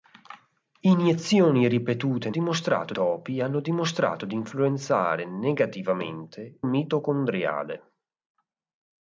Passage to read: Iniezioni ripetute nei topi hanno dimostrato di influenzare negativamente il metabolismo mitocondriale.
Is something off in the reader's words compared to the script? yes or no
yes